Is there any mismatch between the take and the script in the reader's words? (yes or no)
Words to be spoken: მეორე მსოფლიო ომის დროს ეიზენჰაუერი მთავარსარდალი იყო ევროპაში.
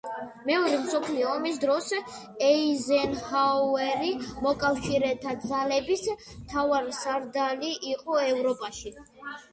yes